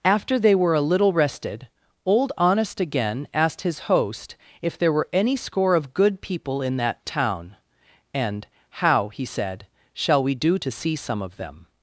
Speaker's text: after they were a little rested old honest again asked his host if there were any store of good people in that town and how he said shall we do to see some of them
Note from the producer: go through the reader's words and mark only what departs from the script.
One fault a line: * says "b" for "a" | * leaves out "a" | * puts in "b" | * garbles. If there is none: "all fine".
* says "score" for "store"